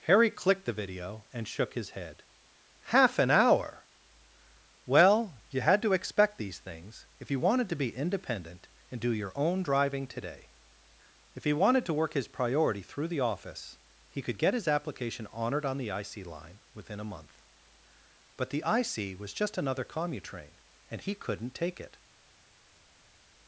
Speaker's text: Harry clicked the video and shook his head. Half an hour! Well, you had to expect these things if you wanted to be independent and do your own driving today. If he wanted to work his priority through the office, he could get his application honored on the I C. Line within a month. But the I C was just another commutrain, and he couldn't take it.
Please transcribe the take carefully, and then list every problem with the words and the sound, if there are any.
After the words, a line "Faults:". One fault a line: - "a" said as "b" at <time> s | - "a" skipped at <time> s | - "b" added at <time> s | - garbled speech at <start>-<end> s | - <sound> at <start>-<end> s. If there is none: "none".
Harry clicked the video and shook his head. Half an hour! Well, you had to expect these things if you wanted to be independent and do your own driving today. If he wanted to work his priority through the office, he could get his application honored on the I C. Line within a month. But the I C was just another commutrain, and he couldn't take it.
Faults:
none